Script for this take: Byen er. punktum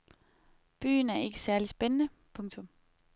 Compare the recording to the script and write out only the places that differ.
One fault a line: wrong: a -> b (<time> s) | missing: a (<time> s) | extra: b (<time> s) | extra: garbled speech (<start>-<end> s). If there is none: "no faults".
extra: ikke særlig spændende (1.2 s)